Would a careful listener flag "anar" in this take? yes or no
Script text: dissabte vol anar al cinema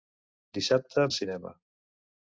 yes